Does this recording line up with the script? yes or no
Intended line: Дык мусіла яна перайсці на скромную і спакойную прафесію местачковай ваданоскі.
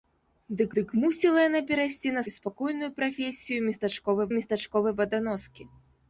no